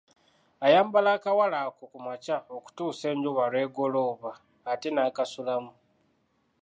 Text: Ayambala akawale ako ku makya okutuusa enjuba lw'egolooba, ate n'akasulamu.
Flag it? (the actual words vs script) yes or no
no